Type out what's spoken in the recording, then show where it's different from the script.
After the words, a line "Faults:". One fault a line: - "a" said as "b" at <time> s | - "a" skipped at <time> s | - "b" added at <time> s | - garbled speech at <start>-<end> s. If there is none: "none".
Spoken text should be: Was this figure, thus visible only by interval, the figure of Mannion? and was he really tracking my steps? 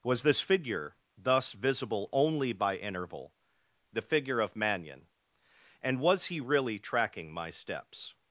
Was this figure, thus visible only by interval, the figure of Mannion? and was he really tracking my steps?
Faults:
none